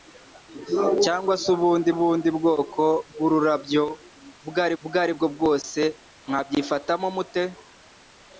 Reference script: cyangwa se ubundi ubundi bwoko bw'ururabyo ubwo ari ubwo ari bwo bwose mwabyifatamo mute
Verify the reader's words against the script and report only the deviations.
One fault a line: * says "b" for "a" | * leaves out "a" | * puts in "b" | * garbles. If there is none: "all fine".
all fine